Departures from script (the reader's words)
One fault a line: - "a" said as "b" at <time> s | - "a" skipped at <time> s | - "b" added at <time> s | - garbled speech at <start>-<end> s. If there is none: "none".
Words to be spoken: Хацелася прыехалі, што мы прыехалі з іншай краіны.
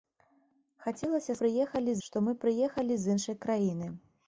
none